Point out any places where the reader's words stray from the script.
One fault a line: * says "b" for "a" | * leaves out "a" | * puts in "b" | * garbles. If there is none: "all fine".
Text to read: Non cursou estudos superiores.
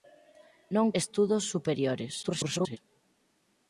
* leaves out "cursou"
* garbles